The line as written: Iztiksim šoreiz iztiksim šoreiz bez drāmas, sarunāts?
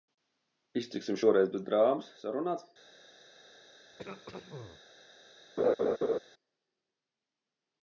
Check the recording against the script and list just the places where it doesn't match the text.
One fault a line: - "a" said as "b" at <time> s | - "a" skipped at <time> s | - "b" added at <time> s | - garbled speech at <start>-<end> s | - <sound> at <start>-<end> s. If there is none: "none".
- "iztiksim šoreiz" skipped at 1.5 s
- throat clearing at 3.9-4.8 s
- laugh at 5.6-6.2 s